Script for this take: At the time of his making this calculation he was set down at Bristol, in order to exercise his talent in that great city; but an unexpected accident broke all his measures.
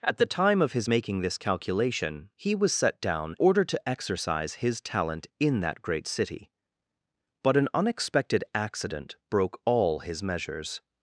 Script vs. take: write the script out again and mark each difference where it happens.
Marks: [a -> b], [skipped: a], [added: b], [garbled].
At the time of his making this calculation he was set down [skipped: at Bristol, in] order to exercise his talent in that great city; but an unexpected accident broke all his measures.